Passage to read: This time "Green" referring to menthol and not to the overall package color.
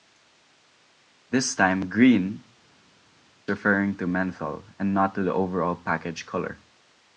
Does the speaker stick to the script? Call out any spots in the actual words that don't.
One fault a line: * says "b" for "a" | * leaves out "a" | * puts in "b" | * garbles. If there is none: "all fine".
all fine